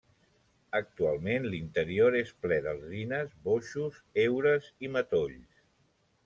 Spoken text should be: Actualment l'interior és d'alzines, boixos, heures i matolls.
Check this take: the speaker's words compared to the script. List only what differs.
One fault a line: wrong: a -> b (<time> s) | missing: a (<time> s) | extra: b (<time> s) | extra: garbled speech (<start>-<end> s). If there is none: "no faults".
extra: ple (2.5 s)